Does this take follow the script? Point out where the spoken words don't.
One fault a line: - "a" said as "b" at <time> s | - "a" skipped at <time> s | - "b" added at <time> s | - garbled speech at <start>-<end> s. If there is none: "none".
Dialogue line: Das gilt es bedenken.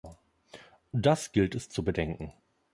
- "zu" added at 1.7 s